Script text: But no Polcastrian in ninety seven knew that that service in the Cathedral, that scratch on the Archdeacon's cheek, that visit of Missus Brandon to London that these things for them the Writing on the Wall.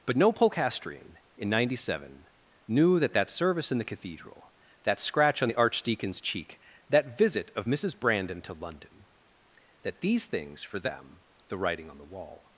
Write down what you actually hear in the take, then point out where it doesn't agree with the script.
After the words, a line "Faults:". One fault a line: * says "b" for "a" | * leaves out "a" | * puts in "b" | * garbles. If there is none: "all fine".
But no Polcastrian in ninety seven knew that that service in the Cathedral, that scratch on the Archdeacon's cheek, that visit of Missus Brandon to London that these things for them the Writing on the Wall.
Faults:
all fine